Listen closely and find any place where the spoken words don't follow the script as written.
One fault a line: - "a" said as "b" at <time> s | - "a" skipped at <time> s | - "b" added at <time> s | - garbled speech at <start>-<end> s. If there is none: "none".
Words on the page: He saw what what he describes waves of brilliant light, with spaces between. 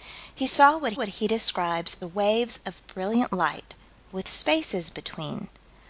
none